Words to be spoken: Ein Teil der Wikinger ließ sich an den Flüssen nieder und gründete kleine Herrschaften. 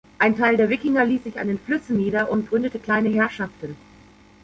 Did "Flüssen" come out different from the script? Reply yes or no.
no